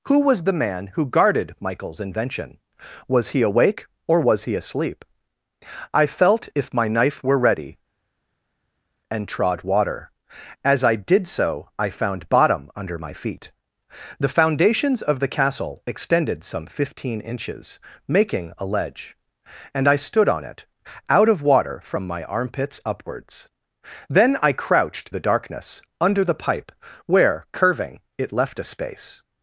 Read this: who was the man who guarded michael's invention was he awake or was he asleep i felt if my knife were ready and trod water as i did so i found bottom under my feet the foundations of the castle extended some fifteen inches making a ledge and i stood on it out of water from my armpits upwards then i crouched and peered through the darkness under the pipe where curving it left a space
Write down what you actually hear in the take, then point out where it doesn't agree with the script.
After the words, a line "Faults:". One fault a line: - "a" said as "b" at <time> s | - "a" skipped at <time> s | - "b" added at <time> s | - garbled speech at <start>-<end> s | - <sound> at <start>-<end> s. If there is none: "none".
who was the man who guarded michael's invention was he awake or was he asleep i felt if my knife were ready and trod water as i did so i found bottom under my feet the foundations of the castle extended some fifteen inches making a ledge and i stood on it out of water from my armpits upwards then i crouched the darkness under the pipe where curving it left a space
Faults:
- "and peered through" skipped at 25.1 s